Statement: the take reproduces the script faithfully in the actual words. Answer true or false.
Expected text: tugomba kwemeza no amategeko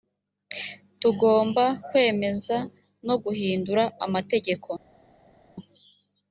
false